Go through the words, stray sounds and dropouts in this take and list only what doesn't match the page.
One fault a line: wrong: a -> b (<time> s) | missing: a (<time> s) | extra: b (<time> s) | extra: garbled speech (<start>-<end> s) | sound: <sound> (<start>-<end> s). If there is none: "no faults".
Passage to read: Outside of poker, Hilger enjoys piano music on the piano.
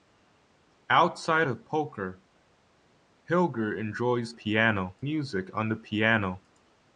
no faults